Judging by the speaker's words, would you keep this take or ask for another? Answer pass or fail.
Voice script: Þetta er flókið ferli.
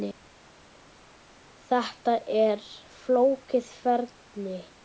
pass